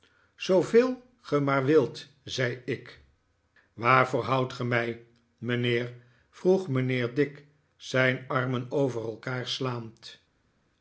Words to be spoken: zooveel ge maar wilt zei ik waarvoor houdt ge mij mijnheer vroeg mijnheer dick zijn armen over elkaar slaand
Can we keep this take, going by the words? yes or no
yes